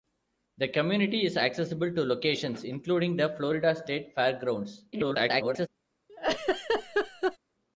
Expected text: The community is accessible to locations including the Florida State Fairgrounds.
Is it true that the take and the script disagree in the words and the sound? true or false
true